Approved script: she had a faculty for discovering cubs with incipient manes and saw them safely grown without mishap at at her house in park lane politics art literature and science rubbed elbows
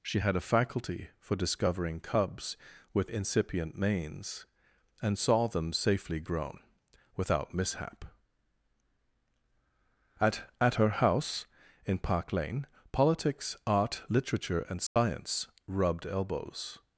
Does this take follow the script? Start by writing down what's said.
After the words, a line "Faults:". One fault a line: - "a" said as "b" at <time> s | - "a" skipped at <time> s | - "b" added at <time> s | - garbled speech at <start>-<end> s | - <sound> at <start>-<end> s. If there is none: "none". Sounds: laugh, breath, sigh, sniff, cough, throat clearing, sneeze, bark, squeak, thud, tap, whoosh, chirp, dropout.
she had a faculty for discovering cubs with incipient manes and saw them safely grown without mishap at at her house in park lane politics art literature and science rubbed elbows
Faults:
- dropout at 14.9-15.0 s